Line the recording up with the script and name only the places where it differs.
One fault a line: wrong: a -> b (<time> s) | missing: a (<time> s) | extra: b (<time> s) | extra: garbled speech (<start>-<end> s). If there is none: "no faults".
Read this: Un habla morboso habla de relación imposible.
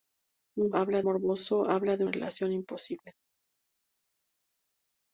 no faults